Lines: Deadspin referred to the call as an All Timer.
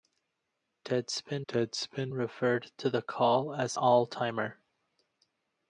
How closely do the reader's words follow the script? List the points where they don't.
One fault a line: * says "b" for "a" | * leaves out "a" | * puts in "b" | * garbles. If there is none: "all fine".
* puts in "deadspin"
* leaves out "an"